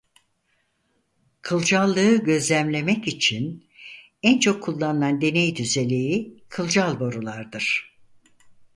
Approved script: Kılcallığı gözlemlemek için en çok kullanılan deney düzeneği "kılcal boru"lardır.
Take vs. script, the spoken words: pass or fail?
pass